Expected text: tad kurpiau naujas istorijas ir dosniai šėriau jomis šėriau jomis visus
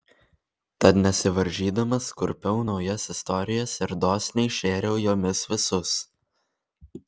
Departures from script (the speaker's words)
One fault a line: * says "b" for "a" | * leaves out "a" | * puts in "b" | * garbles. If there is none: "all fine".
* puts in "nesivaržydamas"
* leaves out "šėriau jomis"